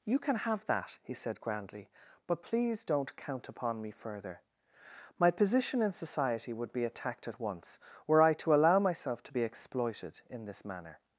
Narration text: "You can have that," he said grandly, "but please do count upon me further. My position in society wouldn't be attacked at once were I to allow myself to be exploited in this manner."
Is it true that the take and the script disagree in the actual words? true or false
true